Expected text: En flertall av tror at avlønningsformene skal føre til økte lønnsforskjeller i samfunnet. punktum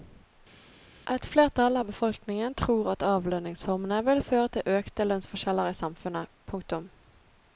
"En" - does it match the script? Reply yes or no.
no